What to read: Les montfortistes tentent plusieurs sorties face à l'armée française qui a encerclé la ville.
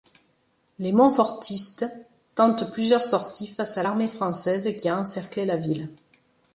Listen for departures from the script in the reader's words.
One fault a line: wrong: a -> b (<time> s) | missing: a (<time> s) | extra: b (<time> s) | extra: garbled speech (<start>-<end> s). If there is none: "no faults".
no faults